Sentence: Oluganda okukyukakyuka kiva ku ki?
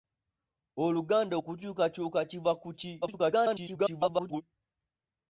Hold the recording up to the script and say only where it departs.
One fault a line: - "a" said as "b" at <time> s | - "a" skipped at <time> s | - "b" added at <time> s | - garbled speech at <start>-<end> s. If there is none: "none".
- garbled speech at 3.0-4.4 s